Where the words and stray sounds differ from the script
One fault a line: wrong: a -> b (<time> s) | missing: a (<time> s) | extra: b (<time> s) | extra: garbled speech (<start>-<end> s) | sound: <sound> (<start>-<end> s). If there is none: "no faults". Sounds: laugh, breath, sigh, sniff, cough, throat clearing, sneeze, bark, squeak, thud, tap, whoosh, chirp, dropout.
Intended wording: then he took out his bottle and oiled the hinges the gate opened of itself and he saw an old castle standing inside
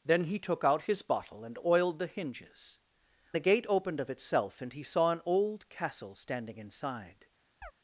sound: chirp (7.6-7.7 s)